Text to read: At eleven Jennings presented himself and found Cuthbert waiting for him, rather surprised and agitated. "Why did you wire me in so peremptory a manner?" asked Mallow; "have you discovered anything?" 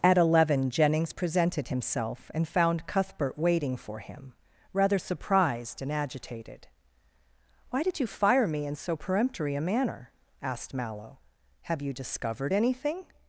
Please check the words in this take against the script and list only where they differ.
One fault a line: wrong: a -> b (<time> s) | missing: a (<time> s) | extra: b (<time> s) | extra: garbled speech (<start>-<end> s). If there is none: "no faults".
wrong: wire -> fire (8.0 s)